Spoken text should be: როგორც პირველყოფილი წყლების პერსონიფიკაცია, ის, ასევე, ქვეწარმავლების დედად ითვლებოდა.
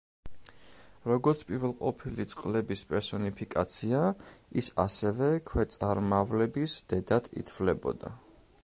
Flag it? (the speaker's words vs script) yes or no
no